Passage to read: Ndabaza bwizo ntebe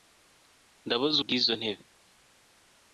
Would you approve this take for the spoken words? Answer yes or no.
yes